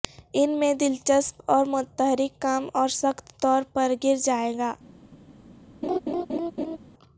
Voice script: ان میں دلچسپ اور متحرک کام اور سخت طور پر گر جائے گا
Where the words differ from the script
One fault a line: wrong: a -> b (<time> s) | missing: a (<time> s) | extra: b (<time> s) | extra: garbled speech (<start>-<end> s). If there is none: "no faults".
no faults